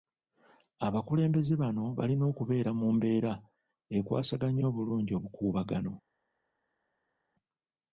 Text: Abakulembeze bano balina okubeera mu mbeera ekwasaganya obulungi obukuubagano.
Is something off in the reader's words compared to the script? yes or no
no